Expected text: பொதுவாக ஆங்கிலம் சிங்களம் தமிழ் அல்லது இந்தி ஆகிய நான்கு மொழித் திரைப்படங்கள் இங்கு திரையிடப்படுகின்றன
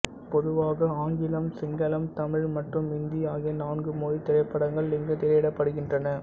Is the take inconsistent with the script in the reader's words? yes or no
yes